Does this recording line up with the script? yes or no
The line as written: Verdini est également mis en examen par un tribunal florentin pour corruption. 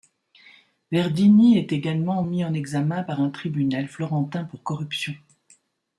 yes